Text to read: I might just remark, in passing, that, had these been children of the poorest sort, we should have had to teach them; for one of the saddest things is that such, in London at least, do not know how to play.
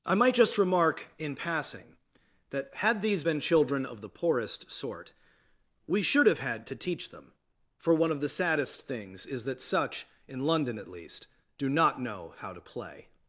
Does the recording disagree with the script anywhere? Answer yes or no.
no